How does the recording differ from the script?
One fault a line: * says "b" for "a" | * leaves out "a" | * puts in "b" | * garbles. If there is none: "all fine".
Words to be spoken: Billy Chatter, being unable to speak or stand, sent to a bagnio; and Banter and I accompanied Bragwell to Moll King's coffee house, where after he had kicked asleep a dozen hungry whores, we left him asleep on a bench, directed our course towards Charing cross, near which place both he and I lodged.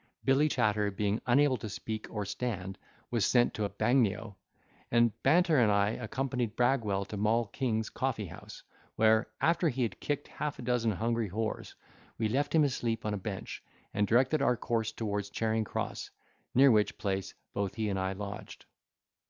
* puts in "was"
* says "half" for "asleep"
* puts in "and"